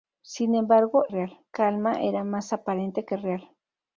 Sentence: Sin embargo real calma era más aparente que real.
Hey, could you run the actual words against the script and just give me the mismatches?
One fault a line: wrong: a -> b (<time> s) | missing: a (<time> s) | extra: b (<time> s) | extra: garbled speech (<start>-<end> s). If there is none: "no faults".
no faults